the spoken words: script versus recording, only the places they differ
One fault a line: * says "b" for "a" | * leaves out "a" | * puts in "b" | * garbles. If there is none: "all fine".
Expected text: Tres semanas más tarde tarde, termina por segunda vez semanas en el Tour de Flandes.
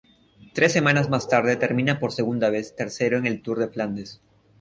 * leaves out "tarde"
* says "tercero" for "semanas"